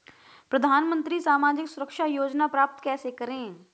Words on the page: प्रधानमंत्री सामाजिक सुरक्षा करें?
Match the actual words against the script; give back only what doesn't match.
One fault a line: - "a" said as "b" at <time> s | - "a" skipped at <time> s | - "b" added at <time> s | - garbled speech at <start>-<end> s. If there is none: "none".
- "योजना प्राप्त कैसे" added at 2.0 s